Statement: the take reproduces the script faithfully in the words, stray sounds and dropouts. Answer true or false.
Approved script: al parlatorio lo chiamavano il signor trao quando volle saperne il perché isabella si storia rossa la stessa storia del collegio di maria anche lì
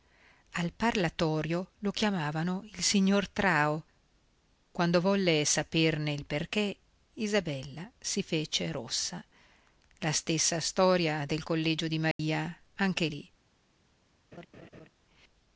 false